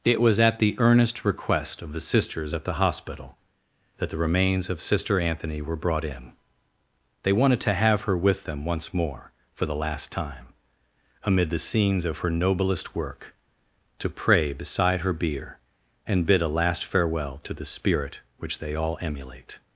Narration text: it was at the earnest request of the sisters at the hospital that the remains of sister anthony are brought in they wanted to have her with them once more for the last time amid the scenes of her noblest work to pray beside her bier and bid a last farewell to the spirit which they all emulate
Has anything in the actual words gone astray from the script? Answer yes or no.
yes